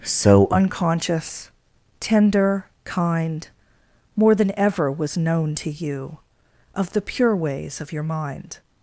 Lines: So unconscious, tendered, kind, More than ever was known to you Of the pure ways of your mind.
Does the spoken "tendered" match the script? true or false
false